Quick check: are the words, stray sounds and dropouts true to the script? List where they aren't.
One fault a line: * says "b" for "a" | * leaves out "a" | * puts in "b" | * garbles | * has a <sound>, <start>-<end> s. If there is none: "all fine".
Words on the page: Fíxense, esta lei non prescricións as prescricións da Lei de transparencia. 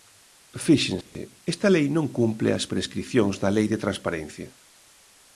* has a dropout, 1.0-1.2 s
* says "cumpre" for "prescricións"